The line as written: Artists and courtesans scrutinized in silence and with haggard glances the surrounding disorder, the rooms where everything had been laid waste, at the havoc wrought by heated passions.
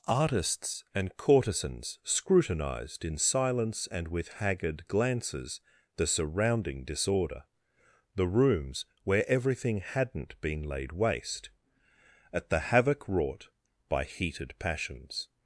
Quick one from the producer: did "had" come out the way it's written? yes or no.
no